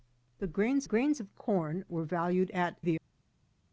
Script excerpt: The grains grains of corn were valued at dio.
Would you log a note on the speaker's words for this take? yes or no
no